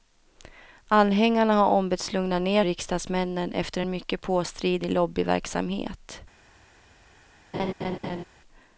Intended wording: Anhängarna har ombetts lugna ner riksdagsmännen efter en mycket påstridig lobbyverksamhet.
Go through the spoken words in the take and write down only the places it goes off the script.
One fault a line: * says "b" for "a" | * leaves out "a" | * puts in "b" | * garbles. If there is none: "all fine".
all fine